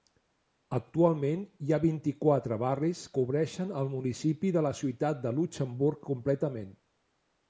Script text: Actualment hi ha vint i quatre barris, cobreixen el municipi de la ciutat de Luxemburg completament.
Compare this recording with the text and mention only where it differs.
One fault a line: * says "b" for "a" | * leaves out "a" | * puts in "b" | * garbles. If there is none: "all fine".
all fine